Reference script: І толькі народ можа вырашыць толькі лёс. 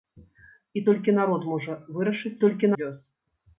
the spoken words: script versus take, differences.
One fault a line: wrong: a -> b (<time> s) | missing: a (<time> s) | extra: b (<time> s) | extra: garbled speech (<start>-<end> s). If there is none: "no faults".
no faults